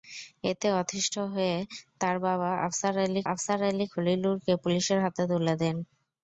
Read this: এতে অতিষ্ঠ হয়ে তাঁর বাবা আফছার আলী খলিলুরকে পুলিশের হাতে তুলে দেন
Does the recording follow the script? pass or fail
fail